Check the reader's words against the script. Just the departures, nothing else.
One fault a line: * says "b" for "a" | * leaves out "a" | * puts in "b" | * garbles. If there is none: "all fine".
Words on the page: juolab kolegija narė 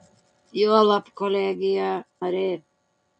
all fine